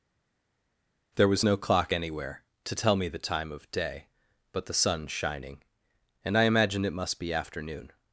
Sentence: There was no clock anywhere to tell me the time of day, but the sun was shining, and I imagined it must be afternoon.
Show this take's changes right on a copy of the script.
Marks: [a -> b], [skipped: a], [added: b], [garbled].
There was no clock anywhere to tell me the time of day, but the sun [skipped: was] shining, and I imagined it must be afternoon.